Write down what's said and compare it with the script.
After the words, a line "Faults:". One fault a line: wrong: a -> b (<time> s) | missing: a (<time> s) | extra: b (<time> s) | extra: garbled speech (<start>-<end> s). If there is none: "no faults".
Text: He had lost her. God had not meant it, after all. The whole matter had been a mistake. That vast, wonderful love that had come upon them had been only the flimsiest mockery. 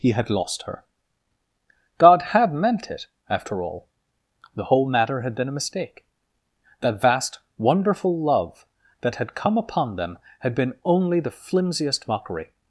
He had lost her. God had meant it, after all. The whole matter had been a mistake. That vast, wonderful love that had come upon them had been only the flimsiest mockery.
Faults:
missing: not (2.5 s)